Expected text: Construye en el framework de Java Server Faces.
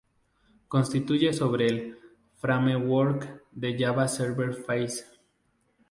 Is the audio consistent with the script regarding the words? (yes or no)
no